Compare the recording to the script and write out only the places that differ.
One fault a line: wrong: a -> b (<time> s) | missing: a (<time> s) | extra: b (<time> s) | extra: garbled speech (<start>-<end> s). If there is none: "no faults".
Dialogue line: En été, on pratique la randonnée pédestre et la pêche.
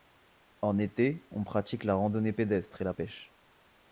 no faults